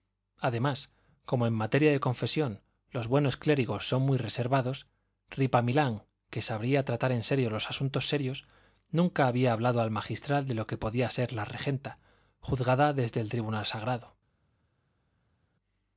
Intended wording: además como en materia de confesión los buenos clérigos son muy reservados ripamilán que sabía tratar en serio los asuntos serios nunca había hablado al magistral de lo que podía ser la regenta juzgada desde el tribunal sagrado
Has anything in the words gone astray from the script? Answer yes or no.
no